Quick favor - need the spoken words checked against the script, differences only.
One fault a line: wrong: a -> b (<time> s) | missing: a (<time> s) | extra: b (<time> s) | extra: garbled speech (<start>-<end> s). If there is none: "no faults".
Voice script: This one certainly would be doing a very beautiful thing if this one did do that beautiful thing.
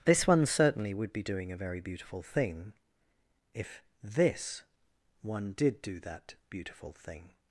no faults